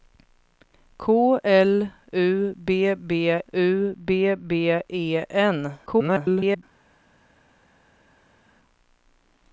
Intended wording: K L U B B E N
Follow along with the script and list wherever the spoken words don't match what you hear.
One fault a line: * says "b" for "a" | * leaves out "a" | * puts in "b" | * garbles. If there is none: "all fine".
* puts in "U B B"
* garbles